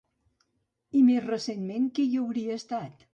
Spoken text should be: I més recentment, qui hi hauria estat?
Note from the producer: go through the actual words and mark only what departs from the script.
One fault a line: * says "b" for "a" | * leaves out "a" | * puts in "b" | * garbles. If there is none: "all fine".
all fine